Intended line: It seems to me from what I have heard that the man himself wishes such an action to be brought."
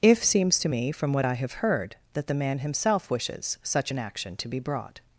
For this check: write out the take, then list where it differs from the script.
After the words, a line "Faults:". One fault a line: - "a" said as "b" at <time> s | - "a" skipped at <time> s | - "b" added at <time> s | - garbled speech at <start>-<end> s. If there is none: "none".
If seems to me from what I have heard that the man himself wishes such an action to be brought."
Faults:
- "It" said as "If" at 0.0 s